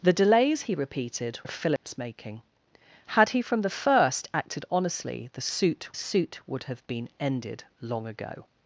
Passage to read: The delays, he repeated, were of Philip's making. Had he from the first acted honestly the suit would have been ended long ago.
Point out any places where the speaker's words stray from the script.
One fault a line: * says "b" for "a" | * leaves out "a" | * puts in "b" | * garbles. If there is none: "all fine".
* leaves out "were"
* puts in "suit"